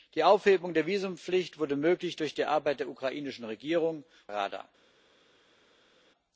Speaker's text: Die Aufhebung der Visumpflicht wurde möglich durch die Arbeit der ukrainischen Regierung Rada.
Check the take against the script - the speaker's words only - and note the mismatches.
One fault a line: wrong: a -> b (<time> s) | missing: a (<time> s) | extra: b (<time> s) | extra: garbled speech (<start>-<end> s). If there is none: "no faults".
no faults